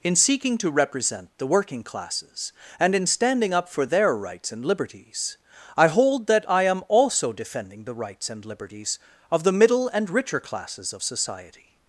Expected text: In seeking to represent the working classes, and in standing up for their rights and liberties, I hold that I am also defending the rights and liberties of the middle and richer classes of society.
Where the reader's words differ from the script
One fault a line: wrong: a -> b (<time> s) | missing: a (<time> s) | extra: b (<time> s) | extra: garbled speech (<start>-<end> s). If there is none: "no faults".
no faults